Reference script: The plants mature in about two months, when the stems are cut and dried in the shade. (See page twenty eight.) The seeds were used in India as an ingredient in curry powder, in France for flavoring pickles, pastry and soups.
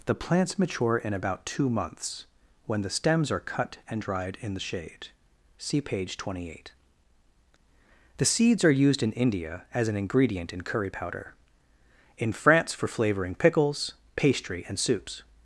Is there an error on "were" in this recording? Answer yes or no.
yes